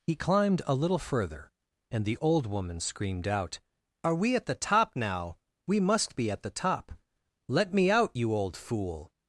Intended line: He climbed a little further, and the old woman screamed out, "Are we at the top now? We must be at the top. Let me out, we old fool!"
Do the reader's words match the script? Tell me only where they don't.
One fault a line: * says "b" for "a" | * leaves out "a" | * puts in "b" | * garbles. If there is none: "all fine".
* says "you" for "we"